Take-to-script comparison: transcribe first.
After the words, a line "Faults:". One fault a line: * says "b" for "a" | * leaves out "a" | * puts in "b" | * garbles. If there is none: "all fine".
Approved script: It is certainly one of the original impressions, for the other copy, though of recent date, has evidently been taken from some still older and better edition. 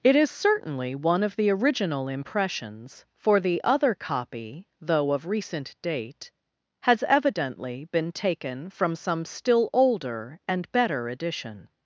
It is certainly one of the original impressions, for the other copy, though of recent date, has evidently been taken from some still older and better edition.
Faults:
all fine